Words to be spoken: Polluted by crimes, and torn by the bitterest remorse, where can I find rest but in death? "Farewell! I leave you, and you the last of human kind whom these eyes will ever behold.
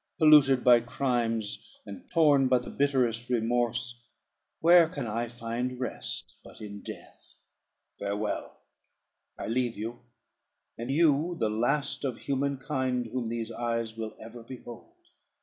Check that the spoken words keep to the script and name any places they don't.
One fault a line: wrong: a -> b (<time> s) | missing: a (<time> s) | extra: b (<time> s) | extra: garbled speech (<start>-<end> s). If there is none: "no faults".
no faults